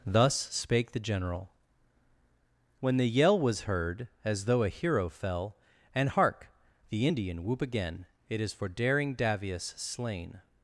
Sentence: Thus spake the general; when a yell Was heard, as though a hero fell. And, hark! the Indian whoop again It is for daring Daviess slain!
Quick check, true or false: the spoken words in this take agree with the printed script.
false